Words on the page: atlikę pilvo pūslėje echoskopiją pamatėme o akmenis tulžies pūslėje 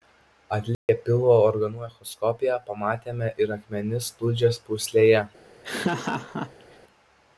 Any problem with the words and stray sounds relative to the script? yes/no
yes